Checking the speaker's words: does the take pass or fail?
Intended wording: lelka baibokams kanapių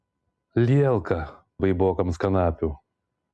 pass